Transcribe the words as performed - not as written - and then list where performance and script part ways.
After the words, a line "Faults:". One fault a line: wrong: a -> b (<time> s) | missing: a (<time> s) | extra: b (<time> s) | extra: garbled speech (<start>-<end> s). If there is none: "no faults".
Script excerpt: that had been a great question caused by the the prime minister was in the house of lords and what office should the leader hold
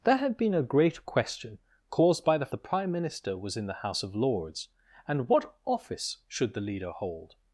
that had been a great question caused by the the prime minister was in the house of lords and what office should the leader hold
Faults:
no faults